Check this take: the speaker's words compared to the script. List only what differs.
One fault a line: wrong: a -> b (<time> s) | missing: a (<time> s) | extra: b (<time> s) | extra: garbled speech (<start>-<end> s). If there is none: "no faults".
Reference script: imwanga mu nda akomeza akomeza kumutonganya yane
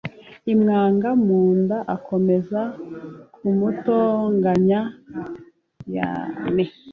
missing: akomeza (2.6 s)